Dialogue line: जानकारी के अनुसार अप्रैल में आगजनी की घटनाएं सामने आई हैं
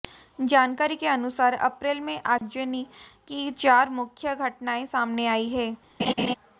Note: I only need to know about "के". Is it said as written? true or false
true